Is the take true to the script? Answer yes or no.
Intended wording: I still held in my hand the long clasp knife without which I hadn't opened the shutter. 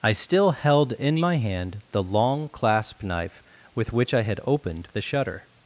no